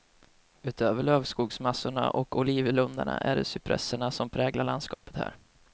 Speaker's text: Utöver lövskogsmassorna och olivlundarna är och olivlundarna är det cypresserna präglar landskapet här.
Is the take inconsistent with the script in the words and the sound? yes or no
yes